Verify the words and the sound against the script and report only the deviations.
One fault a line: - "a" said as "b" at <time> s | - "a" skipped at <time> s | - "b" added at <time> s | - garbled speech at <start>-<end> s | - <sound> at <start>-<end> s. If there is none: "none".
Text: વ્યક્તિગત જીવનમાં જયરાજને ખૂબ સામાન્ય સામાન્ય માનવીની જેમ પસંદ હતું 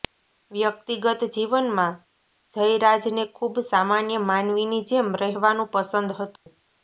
- "સામાન્ય" skipped at 4.2 s
- "રહેવાનું" added at 5.2 s
- dropout at 6.4-6.5 s